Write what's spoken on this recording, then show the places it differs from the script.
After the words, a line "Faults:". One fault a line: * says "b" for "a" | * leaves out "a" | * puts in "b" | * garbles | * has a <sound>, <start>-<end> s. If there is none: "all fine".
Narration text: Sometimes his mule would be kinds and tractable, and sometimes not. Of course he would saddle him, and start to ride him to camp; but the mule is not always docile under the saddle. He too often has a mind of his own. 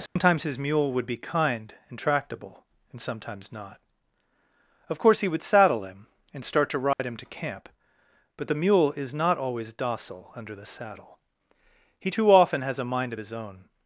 Sometimes his mule would be kind and tractable, and sometimes not. Of course he would saddle him, and start to ride him to camp; but the mule is not always docile under the saddle. He too often has a mind of his own.
Faults:
* has a dropout, 0.1-0.2 s
* says "kind" for "kinds"
* has a dropout, 6.9-7.0 s